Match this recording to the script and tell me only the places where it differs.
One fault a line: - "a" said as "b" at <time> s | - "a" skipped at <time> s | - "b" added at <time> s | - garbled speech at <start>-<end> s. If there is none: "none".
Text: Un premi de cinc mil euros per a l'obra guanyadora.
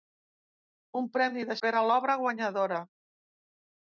- "cinc mil euros" skipped at 1.6 s